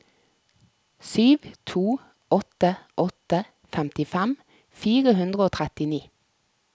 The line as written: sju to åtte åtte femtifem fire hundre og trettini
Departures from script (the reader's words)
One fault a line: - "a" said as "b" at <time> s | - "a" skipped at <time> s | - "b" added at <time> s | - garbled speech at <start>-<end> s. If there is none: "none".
none